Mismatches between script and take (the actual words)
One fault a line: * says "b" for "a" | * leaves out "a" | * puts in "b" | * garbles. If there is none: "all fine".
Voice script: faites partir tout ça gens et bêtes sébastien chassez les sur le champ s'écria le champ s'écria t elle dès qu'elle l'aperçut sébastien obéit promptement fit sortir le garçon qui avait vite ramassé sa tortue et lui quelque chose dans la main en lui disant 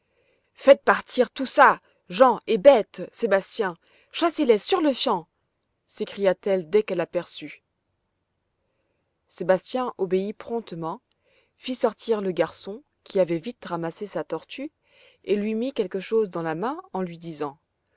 * leaves out "le champ s'écria"
* puts in "mit"